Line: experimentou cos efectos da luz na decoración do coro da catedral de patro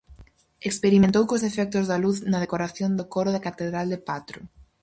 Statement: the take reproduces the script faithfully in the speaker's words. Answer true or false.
true